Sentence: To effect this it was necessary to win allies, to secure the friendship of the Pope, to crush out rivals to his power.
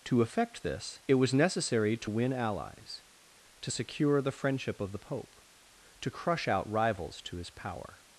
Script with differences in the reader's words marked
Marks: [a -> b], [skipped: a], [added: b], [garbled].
To effect this it was necessary to win allies, to secure the friendship of the Pope, to crush out rivals to his power.